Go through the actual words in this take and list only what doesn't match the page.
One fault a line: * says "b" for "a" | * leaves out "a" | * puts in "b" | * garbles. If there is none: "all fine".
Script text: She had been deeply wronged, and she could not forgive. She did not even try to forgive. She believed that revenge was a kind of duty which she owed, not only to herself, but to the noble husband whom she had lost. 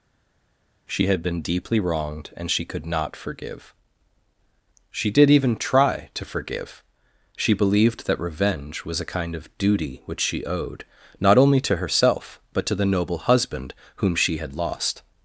* leaves out "not"